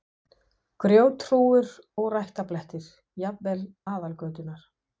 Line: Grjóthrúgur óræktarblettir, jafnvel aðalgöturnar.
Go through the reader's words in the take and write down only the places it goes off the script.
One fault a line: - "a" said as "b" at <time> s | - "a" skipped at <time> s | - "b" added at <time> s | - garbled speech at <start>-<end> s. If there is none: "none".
none